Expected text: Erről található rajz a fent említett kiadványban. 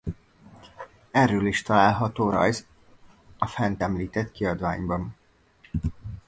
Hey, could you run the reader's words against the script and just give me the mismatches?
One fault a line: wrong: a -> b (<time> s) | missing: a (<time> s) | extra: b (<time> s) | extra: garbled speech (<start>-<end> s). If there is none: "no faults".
extra: is (1.4 s)